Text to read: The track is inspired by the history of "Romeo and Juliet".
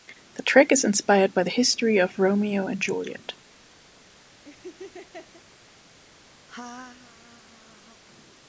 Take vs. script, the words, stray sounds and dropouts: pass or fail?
fail